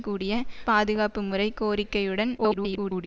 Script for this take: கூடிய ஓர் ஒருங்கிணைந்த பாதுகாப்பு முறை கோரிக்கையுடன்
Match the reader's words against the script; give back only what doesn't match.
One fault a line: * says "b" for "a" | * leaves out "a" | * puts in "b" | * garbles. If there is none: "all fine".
* leaves out "ஓர் ஒருங்கிணைந்த"
* garbles